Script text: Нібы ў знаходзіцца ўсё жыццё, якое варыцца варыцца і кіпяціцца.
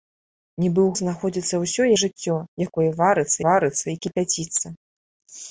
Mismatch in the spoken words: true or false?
false